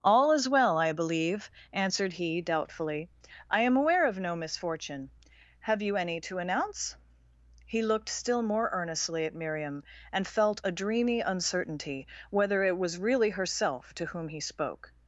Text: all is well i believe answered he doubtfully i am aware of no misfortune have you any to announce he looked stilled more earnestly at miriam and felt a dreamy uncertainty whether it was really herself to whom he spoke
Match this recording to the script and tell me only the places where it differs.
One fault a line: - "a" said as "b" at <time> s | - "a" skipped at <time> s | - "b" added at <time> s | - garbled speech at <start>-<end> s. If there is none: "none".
- "stilled" said as "still" at 8.1 s